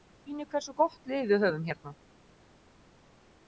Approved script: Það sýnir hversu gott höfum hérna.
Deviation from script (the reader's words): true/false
true